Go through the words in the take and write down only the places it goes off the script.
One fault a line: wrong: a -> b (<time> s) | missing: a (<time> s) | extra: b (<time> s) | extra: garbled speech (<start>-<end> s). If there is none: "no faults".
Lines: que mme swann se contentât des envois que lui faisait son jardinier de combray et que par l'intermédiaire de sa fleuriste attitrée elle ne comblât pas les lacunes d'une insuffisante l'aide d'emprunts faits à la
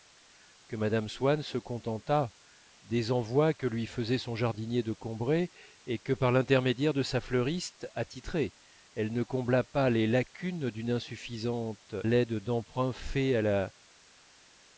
no faults